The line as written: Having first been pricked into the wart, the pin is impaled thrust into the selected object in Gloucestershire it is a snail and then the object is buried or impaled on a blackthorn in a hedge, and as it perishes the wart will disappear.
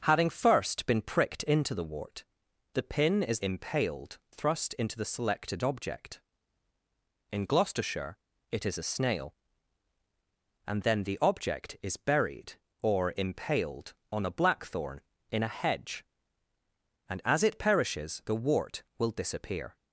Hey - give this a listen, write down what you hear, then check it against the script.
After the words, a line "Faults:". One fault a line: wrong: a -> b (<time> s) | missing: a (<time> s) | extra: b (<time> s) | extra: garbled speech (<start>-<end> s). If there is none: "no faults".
Having first been pricked into the wart, the pin is impaled thrust into the selected object in Gloucestershire it is a snail and then the object is buried or impaled on a blackthorn in a hedge, and as it perishes the wart will disappear.
Faults:
no faults